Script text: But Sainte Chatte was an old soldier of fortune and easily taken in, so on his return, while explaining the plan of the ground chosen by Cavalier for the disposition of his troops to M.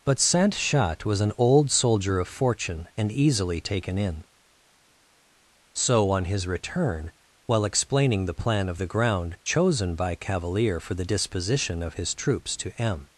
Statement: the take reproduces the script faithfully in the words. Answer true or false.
true